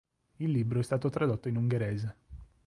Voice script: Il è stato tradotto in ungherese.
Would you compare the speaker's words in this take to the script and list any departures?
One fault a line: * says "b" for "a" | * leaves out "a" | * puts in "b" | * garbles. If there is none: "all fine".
* puts in "libro"